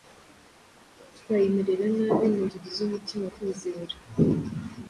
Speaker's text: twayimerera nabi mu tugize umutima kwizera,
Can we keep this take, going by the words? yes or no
yes